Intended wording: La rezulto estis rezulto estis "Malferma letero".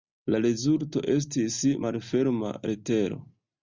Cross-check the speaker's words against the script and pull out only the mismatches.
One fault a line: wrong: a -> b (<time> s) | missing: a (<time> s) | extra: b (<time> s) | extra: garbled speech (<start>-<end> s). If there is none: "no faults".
missing: rezulto estis (1.6 s)